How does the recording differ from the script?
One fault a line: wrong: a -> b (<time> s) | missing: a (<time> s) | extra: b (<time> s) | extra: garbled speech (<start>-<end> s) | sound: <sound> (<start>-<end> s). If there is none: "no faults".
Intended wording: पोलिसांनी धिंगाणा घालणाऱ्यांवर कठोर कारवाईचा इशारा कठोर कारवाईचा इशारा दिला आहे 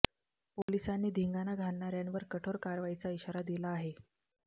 sound: dropout (0.6-0.7 s)
missing: कठोर कारवाईचा इशारा (3.4 s)